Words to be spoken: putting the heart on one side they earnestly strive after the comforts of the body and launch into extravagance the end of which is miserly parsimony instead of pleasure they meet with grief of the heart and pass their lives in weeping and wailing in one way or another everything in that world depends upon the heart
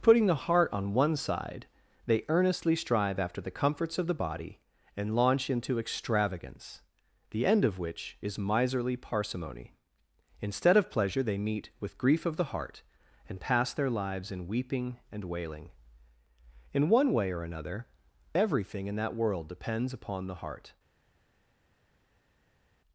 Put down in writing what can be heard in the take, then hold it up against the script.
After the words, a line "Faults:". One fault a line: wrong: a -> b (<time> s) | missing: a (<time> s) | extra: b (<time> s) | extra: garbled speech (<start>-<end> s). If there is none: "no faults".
putting the heart on one side they earnestly strive after the comforts of the body and launch into extravagance the end of which is miserly parsimony instead of pleasure they meet with grief of the heart and pass their lives in weeping and wailing in one way or another everything in that world depends upon the heart
Faults:
no faults